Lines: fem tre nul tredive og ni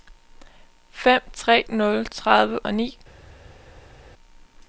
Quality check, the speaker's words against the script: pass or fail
pass